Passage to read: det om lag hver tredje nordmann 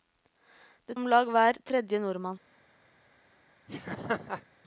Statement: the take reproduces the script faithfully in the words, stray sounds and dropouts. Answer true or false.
false